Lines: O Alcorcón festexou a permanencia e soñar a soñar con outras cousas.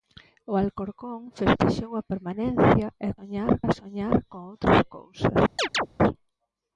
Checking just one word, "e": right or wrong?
right